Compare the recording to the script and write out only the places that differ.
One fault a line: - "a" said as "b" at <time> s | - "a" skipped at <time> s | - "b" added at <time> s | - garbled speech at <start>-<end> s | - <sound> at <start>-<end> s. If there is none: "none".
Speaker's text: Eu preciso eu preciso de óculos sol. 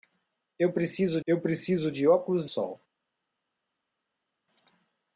none